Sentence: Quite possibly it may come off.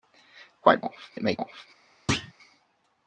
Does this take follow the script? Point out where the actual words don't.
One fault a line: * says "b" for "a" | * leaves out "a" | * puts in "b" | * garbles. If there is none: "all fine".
* says "off" for "possibly"
* leaves out "come"